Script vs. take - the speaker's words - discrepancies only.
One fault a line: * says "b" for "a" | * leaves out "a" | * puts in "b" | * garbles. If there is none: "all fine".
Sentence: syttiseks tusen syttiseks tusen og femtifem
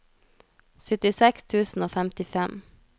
* leaves out "syttiseks tusen"